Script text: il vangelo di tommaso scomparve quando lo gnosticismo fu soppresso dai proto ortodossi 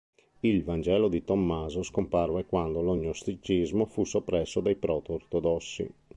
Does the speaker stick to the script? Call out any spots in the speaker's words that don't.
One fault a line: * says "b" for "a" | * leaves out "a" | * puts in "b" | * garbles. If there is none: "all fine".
all fine